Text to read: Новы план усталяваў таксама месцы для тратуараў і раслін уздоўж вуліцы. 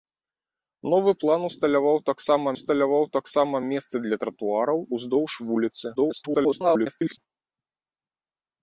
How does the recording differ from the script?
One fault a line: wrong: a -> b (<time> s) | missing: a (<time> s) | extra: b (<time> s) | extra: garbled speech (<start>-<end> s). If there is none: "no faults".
extra: усталяваў таксама (2.6 s)
missing: і раслін (4.8 s)
extra: garbled speech (6.0-7.2 s)